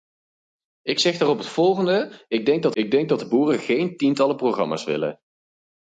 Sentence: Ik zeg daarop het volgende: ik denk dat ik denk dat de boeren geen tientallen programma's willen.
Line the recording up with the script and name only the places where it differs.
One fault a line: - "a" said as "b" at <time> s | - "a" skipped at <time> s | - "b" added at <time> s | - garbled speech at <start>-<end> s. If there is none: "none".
none